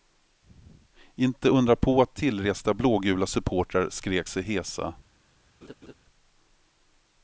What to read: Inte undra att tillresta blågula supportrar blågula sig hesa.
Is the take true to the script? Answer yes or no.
no